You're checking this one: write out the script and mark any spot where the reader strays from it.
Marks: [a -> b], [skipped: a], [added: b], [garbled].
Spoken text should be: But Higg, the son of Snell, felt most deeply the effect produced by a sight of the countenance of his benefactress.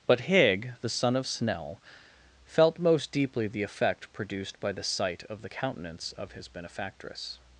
But Higg, the son of Snell, felt most deeply the effect produced by [a -> the] sight of the countenance of his benefactress.